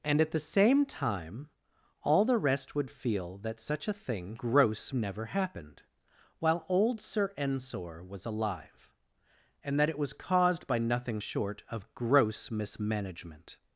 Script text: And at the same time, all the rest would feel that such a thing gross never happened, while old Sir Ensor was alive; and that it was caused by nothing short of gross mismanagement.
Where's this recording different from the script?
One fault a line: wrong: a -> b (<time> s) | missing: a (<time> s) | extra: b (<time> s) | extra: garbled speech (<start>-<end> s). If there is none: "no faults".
no faults